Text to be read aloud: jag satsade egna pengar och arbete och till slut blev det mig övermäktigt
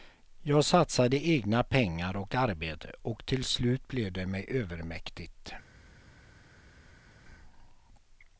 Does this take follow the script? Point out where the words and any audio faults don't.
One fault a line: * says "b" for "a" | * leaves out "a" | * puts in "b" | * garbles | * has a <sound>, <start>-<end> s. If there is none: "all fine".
all fine